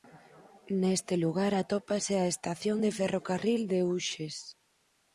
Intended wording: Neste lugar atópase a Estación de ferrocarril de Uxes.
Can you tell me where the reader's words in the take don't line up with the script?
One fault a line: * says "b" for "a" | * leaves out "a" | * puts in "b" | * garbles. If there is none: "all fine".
all fine